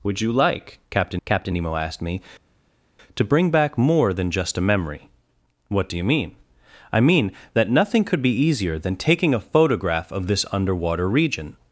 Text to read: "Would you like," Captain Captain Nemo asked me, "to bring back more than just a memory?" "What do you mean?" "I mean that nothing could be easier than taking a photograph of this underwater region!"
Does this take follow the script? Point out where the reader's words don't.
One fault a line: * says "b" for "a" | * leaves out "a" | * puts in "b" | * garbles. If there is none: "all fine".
all fine